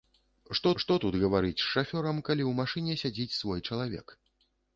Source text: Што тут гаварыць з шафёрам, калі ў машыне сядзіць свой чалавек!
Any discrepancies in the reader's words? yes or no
yes